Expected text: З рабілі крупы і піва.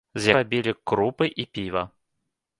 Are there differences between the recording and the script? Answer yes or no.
no